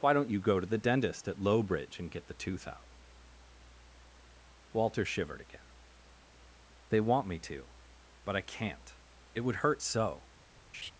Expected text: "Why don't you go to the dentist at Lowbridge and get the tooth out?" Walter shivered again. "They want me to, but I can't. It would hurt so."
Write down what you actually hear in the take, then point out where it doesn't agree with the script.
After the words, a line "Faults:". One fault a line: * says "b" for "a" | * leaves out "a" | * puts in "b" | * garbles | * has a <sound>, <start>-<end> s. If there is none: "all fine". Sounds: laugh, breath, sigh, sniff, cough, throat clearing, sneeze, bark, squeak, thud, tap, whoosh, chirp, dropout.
"Why don't you go to the dentist at Lowbridge and get the tooth out?" Walter shivered again. "They want me to, but I can't. It would hurt so."
Faults:
* has a laugh, 10.7-10.9 s